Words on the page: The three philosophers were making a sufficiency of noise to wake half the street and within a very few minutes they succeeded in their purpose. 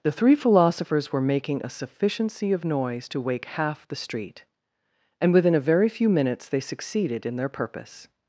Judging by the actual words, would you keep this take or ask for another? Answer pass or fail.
pass